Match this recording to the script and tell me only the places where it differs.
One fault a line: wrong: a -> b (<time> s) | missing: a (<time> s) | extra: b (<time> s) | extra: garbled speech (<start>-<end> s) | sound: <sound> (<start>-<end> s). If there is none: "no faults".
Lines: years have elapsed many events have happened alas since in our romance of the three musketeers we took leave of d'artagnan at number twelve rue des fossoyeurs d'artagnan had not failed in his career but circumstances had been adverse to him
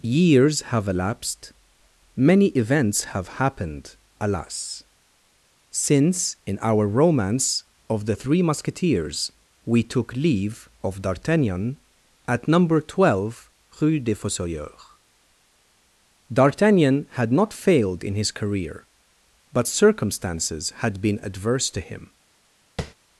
sound: tap (22.8-22.9 s)